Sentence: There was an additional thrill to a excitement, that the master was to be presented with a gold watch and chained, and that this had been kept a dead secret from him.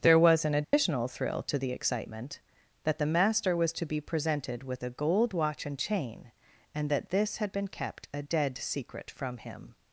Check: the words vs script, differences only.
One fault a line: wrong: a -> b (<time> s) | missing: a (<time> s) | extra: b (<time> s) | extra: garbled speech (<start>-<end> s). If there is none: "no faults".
wrong: a -> the (1.6 s)
wrong: chained -> chain (5.8 s)